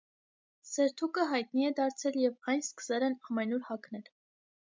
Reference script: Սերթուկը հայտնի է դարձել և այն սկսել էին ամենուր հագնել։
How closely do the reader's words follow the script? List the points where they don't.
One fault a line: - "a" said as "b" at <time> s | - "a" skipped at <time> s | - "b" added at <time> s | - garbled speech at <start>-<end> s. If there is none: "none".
- "էին" said as "են" at 3.1 s